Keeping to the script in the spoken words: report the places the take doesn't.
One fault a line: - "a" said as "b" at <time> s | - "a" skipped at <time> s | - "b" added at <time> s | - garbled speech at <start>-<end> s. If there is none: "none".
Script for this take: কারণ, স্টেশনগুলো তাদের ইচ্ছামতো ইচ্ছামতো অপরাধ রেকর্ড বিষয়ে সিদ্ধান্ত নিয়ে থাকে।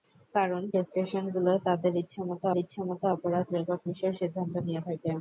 none